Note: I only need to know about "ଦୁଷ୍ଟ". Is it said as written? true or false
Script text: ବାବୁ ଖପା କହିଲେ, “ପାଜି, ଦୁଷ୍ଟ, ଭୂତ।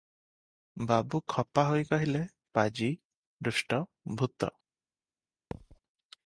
true